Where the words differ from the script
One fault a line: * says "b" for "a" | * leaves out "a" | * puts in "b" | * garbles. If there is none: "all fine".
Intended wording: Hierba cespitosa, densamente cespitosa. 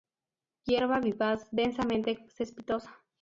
* says "vivaz" for "cespitosa"